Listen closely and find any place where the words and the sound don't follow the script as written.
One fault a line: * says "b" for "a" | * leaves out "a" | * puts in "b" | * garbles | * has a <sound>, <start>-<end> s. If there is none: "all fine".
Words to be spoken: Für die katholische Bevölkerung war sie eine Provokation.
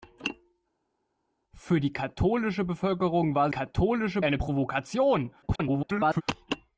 * says "katholische" for "sie"
* garbles